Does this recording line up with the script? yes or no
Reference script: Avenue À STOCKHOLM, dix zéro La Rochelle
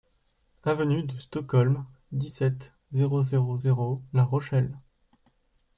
no